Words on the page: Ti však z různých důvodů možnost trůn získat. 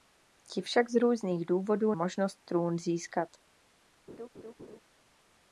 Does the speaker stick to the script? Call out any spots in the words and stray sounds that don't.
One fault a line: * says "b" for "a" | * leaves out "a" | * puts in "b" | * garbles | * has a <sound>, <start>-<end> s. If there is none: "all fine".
* has a laugh, 4.1-4.8 s